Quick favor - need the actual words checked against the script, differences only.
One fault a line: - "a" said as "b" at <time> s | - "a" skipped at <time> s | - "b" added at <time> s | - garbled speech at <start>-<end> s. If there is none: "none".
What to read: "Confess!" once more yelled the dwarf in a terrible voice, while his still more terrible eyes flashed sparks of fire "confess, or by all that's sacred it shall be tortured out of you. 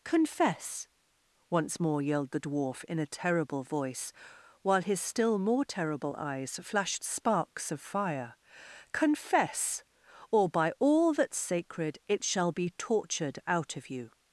none